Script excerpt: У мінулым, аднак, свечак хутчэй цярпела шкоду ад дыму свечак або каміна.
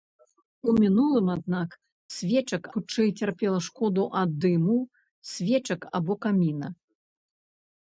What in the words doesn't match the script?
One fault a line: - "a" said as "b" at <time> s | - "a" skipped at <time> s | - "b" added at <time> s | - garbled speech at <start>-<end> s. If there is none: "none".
none